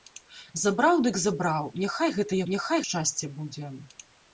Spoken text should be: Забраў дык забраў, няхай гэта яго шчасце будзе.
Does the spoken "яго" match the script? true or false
false